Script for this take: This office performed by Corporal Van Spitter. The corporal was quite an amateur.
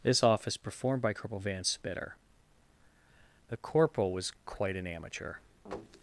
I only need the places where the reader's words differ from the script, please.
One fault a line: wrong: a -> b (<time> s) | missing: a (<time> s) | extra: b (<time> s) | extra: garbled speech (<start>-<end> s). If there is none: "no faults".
no faults